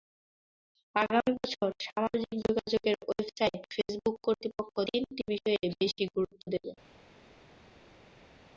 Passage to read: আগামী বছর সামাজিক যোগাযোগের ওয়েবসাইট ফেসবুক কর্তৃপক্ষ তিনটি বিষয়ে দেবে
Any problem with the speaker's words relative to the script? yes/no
yes